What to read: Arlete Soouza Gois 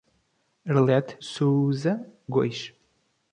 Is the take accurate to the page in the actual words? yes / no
yes